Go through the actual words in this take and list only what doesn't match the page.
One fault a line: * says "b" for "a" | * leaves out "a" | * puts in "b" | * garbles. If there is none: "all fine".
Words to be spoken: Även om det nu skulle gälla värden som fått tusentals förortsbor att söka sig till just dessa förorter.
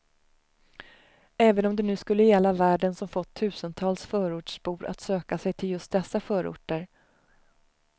all fine